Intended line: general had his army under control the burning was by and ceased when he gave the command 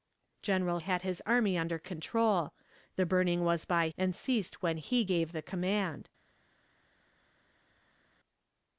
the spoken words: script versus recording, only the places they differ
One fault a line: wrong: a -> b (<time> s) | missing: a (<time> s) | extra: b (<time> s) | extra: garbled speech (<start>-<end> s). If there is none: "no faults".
no faults